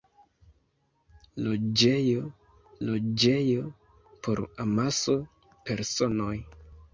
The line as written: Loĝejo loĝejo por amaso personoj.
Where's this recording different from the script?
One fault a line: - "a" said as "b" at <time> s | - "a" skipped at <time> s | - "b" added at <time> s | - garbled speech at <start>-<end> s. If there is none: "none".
none